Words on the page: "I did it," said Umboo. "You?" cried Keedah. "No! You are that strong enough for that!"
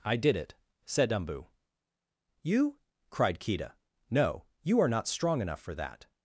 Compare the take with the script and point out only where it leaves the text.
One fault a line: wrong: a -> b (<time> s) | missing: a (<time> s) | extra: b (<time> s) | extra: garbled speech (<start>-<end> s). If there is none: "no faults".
wrong: that -> not (4.9 s)